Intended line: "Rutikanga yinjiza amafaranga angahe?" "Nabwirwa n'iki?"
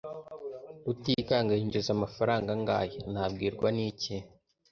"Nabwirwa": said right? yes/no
yes